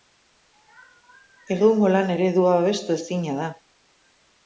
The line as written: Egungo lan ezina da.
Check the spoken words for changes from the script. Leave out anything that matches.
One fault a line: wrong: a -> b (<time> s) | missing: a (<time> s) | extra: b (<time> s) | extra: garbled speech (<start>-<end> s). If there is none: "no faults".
extra: eredua babestu (2.1 s)